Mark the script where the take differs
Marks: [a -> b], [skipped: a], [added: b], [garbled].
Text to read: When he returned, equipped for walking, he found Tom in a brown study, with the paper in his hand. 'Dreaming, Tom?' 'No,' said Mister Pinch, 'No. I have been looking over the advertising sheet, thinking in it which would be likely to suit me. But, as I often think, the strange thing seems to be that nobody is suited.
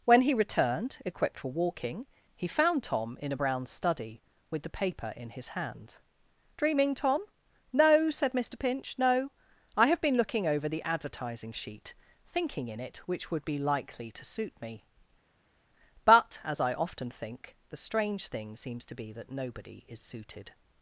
When he returned, equipped for walking, he found Tom in a brown study, with the paper in his hand. 'Dreaming, Tom?' 'No,' said Mister Pinch, 'No. I have been looking over the advertising sheet, thinking in it which would be likely to suit me. But, as I often think, the strange thing seems to be that nobody is suited.